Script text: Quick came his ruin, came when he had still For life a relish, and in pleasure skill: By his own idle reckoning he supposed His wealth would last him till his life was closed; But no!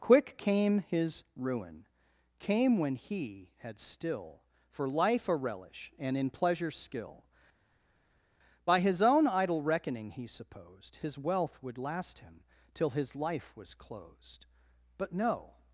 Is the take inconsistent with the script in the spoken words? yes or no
no